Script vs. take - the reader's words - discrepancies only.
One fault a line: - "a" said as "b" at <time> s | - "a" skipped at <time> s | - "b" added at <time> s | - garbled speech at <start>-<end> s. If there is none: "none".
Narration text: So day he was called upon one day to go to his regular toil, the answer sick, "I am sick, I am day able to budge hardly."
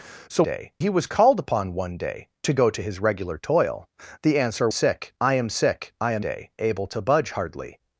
none